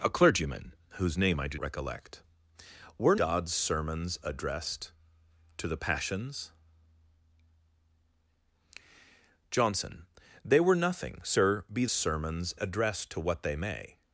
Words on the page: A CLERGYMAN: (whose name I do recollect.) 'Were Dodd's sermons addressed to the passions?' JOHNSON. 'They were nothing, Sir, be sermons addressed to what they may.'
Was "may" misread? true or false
false